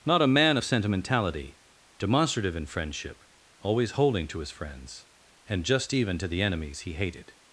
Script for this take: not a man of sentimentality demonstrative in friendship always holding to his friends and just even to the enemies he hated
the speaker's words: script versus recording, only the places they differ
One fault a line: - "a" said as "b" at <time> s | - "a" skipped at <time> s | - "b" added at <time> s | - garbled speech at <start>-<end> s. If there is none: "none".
none